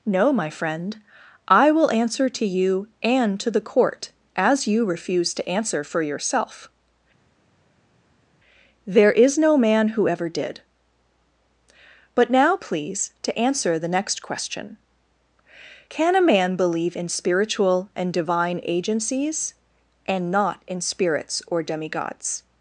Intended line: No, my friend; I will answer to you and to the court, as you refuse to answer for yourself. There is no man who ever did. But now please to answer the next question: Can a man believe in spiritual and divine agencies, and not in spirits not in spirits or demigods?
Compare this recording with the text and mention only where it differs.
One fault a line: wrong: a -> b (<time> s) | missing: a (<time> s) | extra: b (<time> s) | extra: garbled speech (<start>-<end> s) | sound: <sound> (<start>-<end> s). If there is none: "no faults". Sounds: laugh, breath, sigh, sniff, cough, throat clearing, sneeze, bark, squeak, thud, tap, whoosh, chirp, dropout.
missing: not in spirits (21.4 s)